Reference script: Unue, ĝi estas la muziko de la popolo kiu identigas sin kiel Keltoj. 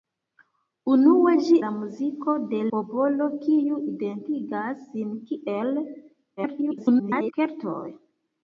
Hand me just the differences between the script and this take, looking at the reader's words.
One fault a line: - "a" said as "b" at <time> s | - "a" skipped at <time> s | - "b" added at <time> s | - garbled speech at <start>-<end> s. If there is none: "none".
- "estas" skipped at 1.6 s
- "la" skipped at 2.6 s
- garbled speech at 6.4-7.3 s